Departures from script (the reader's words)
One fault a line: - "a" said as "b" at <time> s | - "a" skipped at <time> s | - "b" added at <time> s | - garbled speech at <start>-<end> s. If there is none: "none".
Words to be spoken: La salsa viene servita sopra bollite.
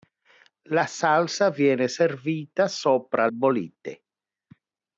none